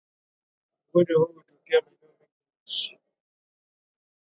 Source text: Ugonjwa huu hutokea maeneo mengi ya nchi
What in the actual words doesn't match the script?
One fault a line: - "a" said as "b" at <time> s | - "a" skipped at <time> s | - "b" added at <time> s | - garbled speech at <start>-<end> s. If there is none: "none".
none